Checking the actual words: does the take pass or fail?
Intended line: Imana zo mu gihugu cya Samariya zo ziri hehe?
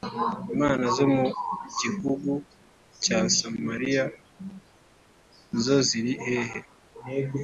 pass